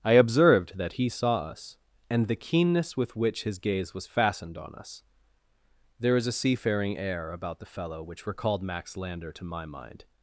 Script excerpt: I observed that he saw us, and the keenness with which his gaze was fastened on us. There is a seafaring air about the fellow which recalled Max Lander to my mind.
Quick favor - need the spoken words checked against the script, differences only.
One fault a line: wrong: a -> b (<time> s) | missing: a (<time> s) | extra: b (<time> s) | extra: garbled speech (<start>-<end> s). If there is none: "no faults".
no faults